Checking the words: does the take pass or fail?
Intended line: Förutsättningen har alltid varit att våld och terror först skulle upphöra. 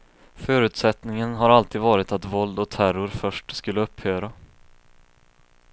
pass